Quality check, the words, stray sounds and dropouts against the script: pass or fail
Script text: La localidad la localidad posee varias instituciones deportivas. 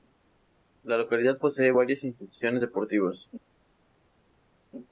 fail